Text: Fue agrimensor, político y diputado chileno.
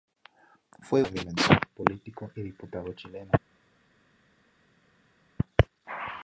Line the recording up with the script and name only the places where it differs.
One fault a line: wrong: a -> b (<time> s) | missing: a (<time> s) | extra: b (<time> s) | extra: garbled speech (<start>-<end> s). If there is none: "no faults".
no faults